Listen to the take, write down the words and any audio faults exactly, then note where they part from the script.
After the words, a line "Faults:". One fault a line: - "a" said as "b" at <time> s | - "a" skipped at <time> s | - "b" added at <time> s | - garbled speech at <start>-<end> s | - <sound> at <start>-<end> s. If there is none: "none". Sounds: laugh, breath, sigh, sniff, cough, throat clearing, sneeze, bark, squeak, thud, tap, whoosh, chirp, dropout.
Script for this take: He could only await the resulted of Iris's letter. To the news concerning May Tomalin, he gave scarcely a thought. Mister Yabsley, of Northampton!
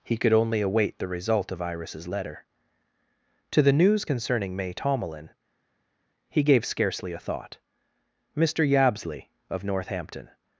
He could only await the result of Iris's letter. To the news concerning May Tomalin, he gave scarcely a thought. Mister Yabsley, of Northampton!
Faults:
- "resulted" said as "result" at 1.1 s